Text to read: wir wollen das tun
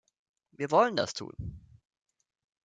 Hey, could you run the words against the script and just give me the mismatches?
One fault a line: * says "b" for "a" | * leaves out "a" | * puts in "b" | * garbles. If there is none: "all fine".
all fine